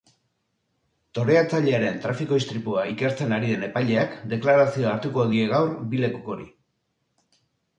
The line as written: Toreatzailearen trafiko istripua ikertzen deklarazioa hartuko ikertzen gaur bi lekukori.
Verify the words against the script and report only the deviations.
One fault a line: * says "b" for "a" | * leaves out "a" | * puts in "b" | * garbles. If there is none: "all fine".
* puts in "ari den epaileak"
* says "die" for "ikertzen"